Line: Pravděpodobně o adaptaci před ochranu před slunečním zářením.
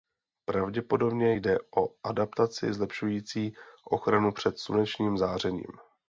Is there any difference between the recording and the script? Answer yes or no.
yes